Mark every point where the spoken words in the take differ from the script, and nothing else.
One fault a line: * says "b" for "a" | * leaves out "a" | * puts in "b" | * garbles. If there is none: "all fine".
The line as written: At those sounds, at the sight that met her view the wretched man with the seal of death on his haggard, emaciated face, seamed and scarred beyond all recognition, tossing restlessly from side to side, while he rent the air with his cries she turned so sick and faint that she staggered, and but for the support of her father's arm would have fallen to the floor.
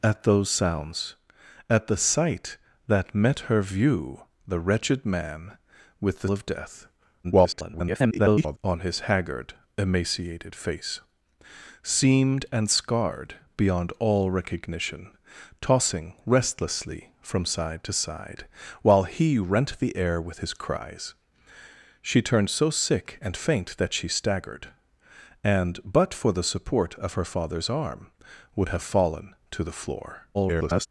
* leaves out "seal"
* garbles
* garbles